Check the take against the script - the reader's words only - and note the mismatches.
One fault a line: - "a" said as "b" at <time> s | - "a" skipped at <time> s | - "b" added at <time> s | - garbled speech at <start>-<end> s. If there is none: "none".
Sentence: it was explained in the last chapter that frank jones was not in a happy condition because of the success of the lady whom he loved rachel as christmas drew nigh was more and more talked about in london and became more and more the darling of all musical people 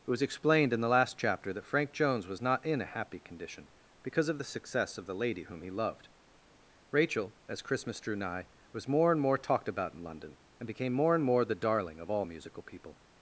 none